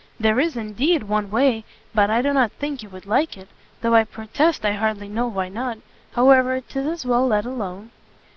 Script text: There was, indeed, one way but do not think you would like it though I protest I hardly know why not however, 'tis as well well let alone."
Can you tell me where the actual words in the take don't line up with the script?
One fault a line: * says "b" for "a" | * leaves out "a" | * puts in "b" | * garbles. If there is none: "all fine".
* says "is" for "was"
* puts in "I"
* leaves out "well"